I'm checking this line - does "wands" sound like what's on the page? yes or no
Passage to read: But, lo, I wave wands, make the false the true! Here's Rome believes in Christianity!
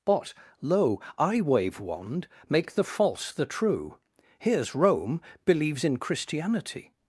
no